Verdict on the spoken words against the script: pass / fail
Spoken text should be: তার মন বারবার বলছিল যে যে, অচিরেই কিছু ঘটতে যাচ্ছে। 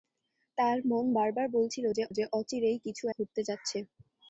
pass